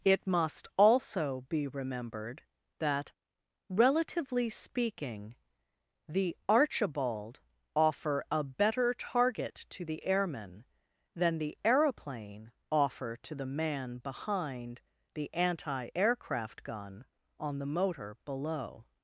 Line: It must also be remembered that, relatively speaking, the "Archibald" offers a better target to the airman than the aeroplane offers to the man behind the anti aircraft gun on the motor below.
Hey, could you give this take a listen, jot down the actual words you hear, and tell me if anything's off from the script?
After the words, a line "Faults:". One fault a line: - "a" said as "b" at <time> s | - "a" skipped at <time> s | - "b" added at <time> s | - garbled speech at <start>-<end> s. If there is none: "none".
It must also be remembered that, relatively speaking, the "Archibald" offer a better target to the airman than the aeroplane offer to the man behind the anti aircraft gun on the motor below.
Faults:
- "offers" said as "offer" at 7.8 s
- "offers" said as "offer" at 12.7 s